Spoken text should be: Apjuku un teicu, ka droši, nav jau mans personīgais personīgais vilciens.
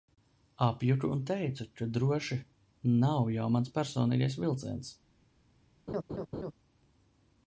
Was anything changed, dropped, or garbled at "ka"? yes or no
no